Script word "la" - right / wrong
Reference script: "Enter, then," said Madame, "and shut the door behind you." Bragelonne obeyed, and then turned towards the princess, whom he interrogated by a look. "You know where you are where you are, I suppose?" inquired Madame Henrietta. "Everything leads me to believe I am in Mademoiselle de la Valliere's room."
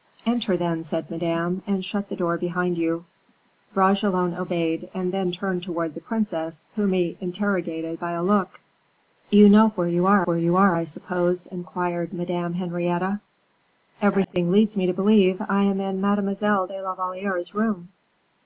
right